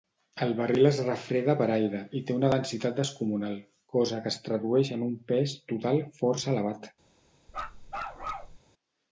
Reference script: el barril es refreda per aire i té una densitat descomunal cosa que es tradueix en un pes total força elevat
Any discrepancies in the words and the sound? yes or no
yes